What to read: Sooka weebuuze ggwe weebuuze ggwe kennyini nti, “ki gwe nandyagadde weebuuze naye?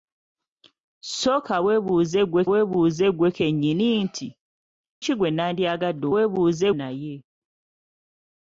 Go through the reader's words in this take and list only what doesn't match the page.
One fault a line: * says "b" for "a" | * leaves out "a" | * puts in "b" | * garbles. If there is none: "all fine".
all fine